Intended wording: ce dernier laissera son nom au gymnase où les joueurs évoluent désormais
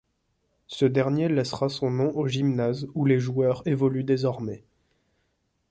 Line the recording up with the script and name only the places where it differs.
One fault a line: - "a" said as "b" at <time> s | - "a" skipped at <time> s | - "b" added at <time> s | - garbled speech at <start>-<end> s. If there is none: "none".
none